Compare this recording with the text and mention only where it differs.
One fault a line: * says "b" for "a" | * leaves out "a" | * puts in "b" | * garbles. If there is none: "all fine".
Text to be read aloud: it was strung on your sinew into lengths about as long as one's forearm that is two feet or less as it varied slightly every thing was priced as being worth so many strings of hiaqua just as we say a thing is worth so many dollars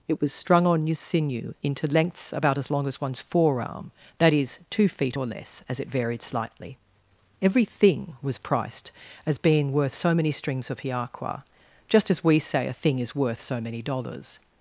all fine